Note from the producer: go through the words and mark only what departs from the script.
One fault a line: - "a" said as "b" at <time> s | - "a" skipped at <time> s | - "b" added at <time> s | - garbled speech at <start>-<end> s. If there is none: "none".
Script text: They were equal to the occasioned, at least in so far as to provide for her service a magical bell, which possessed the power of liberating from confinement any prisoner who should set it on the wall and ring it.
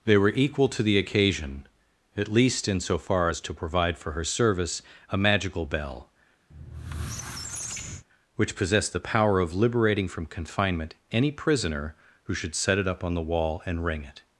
- "occasioned" said as "occasion" at 1.0 s
- "up" added at 12.9 s